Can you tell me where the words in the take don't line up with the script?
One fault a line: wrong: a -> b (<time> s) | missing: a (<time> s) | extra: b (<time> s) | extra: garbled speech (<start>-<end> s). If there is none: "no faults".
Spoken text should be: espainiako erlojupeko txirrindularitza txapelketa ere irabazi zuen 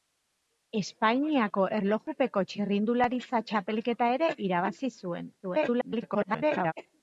extra: garbled speech (5.4-6.7 s)